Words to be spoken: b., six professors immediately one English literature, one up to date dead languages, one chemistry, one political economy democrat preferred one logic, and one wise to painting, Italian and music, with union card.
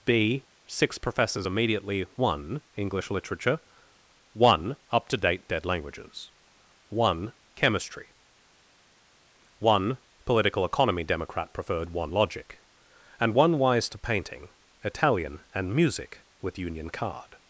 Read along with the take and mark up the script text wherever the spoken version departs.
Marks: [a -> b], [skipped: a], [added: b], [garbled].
b., six professors immediately one English literature, one up to date dead languages, one chemistry, one political economy democrat preferred one logic, and one wise to painting, Italian and music, with union card.